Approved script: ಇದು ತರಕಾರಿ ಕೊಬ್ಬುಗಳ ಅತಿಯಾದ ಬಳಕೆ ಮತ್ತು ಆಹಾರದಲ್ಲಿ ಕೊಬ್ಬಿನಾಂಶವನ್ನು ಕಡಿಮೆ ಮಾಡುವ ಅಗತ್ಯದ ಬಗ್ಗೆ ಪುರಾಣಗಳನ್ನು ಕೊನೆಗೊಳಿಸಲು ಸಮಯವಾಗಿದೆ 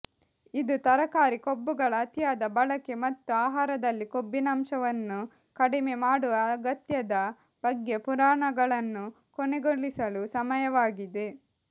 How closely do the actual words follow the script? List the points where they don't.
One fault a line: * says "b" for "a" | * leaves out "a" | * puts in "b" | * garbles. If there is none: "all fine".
all fine